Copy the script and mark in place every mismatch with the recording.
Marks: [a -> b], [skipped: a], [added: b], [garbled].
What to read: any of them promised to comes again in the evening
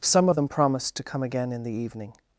[any -> some] of them promised to [comes -> come] again in the evening